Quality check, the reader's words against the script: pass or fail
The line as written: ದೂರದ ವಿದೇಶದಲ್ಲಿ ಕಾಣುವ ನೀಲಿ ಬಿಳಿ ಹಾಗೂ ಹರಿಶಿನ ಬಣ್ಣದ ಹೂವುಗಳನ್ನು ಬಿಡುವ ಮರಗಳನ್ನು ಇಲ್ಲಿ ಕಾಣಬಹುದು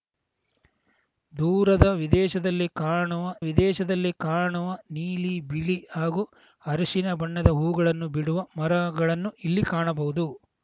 fail